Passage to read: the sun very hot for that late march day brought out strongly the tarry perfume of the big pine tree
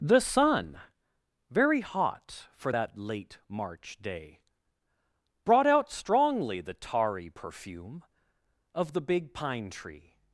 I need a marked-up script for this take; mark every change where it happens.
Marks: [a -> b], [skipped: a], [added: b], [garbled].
the sun very hot for that late march day brought out strongly the tarry perfume of the big pine tree